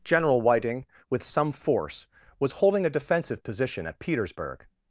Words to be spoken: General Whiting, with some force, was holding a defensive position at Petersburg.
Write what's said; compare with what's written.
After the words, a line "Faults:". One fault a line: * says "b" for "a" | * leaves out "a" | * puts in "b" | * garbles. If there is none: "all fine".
General Whiting, with some force, was holding a defensive position at Petersburg.
Faults:
all fine